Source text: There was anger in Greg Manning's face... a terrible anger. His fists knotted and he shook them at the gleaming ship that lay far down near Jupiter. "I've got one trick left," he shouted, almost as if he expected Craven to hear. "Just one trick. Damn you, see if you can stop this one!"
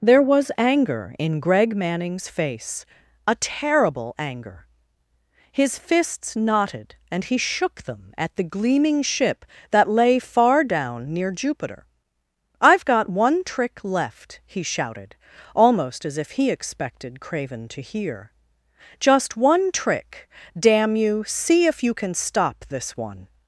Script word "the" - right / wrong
right